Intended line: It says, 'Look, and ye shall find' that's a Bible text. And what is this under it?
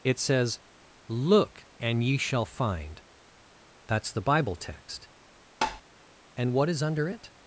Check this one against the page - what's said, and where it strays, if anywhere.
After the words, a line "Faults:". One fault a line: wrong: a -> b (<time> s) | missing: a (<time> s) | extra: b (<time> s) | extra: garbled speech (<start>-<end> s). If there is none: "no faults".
It says, 'Look, and ye shall find' that's the Bible text. And what is under it?
Faults:
wrong: a -> the (4.1 s)
missing: this (6.8 s)